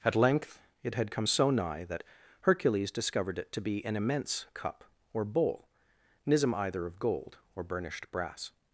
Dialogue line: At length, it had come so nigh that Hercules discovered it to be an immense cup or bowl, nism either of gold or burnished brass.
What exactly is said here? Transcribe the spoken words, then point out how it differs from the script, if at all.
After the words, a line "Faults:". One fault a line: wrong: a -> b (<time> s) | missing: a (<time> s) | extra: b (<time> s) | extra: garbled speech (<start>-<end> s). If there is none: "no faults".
At length, it had come so nigh that Hercules discovered it to be an immense cup or bowl, nism either of gold or burnished brass.
Faults:
no faults